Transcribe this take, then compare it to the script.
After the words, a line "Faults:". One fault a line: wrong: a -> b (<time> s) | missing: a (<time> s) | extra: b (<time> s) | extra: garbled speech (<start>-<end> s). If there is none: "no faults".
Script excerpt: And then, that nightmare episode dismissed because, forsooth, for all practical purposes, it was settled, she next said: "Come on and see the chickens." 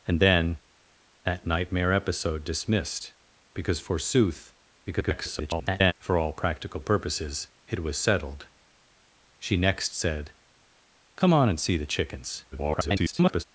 And then, that nightmare episode dismissed because, forsooth, [garbled] for all practical purposes, it was settled, she next said: "Come on and see the chickens." [garbled]
Faults:
extra: garbled speech (4.9-5.9 s)
extra: garbled speech (12.5-13.4 s)